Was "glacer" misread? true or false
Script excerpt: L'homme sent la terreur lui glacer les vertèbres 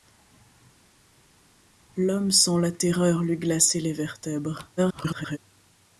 false